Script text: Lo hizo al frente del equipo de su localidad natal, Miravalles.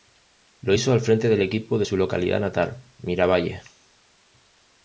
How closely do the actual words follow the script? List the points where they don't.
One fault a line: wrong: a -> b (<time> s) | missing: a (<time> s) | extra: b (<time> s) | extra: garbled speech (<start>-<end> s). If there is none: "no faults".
no faults